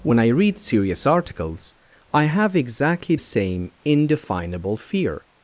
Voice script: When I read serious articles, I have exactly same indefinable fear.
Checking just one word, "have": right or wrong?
right